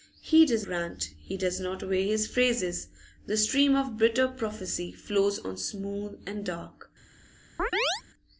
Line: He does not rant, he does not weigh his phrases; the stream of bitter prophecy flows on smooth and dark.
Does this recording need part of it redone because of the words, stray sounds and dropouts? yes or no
yes